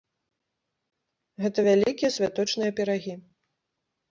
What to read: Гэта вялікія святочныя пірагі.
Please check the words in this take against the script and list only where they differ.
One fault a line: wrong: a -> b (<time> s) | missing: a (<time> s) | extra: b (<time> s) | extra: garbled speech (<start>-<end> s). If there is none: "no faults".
no faults